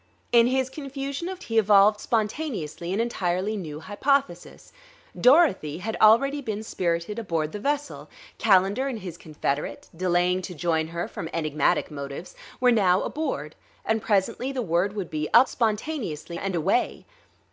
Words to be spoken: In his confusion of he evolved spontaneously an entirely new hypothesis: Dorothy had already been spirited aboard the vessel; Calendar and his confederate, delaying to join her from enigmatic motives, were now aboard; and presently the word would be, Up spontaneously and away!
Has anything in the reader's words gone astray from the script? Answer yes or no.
no